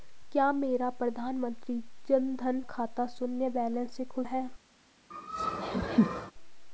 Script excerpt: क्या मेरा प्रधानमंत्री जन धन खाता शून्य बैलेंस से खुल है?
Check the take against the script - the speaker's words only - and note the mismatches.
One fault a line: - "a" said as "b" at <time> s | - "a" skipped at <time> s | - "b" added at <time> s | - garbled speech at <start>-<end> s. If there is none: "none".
none